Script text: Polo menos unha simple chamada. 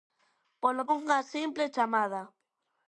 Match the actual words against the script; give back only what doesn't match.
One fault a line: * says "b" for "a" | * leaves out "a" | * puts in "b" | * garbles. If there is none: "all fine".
* leaves out "menos"